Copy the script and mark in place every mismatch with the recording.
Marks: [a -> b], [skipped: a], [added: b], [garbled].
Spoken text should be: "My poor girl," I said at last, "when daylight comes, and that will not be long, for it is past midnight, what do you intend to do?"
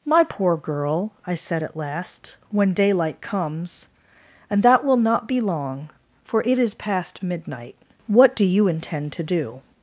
"My poor girl," I said at last, "when daylight comes, and that will not be long, for it is past midnight, what do you intend to do?"